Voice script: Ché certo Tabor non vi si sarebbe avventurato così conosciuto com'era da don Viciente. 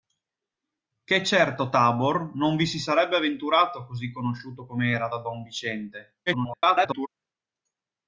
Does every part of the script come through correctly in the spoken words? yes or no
no